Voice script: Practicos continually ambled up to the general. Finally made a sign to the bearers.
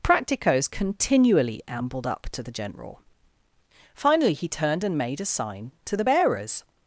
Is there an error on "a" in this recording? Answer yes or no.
no